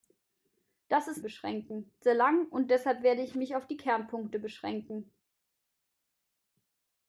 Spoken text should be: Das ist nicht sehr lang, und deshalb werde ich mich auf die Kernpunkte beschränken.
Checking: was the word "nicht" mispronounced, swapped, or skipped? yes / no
yes